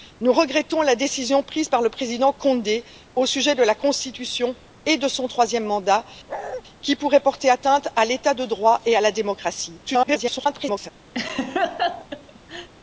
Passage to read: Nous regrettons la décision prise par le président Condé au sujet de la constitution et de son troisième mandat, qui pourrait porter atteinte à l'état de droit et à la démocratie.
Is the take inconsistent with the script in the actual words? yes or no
yes